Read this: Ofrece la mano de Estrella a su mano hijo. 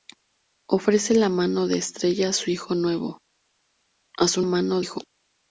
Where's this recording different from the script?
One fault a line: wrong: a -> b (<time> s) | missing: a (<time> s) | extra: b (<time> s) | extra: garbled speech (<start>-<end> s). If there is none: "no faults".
no faults